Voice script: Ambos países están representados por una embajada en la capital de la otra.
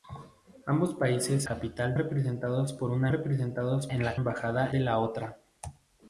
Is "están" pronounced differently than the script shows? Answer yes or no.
yes